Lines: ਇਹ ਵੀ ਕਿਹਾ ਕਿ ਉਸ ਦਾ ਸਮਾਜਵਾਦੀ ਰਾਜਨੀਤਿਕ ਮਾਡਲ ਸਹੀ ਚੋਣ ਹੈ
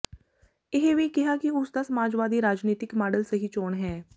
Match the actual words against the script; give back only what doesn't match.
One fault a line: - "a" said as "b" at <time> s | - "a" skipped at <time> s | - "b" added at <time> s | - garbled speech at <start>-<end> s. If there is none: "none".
none